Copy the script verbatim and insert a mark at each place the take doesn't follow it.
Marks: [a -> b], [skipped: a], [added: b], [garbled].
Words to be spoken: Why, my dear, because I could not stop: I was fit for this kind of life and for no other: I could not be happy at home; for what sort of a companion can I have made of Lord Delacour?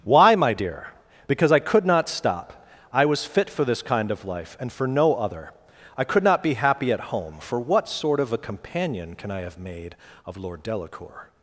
Why, my dear, because I could not stop: I was fit for this kind of life and for no other: I could not be happy at home; for what sort of a companion can I have made of Lord Delacour?